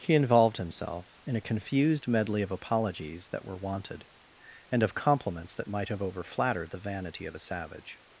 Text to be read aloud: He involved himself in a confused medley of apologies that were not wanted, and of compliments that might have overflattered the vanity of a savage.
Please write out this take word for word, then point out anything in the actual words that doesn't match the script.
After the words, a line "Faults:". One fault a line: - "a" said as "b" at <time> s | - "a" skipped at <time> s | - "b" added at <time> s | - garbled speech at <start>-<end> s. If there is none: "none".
He involved himself in a confused medley of apologies that were wanted, and of compliments that might have overflattered the vanity of a savage.
Faults:
- "not" skipped at 3.5 s